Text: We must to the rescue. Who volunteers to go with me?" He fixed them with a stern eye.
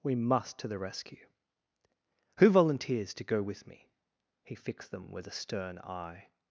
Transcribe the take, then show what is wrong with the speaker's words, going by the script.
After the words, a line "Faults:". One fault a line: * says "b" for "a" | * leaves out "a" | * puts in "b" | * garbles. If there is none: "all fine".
We must to the rescue. Who volunteers to go with me?" He fixed them with a stern eye.
Faults:
all fine